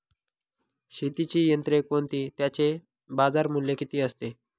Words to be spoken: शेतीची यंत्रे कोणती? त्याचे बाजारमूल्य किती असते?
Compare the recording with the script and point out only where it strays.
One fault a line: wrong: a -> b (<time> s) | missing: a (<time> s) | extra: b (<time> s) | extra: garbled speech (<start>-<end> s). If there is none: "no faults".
no faults